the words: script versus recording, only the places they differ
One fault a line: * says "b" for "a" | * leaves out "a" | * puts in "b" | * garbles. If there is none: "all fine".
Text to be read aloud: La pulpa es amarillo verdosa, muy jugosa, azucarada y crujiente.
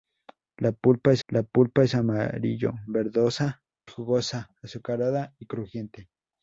* puts in "la pulpa es"
* leaves out "muy"